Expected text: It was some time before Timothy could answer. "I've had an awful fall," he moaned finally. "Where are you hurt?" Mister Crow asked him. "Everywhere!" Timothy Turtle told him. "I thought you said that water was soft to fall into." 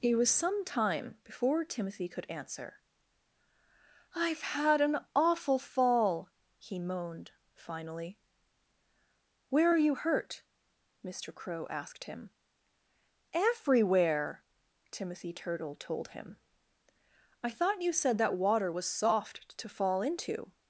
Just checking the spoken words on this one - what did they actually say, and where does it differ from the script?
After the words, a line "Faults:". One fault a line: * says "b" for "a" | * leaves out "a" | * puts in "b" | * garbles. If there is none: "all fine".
It was some time before Timothy could answer. "I've had an awful fall," he moaned finally. "Where are you hurt?" Mister Crow asked him. "Everywhere!" Timothy Turtle told him. "I thought you said that water was soft to fall into."
Faults:
all fine